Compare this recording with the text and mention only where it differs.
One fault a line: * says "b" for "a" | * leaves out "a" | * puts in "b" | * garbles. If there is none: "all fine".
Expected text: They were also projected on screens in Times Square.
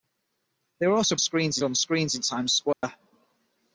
* says "screens" for "projected"